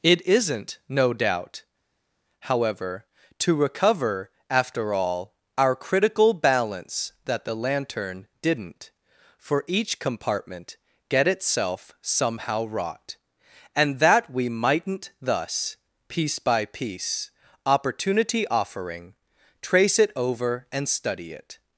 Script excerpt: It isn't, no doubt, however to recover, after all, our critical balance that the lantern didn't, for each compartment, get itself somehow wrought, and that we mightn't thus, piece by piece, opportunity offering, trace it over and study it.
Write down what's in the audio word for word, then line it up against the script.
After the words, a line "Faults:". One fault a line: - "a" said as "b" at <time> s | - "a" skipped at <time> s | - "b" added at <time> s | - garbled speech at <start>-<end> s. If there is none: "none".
It isn't, no doubt, however to recover, after all, our critical balance that the lantern didn't, for each compartment, get itself somehow wrought, and that we mightn't thus, piece by piece, opportunity offering, trace it over and study it.
Faults:
none